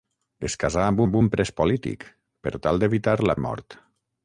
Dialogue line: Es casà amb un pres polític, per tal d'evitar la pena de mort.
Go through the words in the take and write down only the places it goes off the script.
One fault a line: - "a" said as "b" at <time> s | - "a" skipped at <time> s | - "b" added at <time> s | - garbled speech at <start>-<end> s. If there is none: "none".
- "amb" added at 1.1 s
- "pena" skipped at 3.4 s